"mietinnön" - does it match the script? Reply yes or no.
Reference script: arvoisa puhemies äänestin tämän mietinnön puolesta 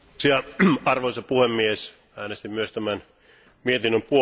yes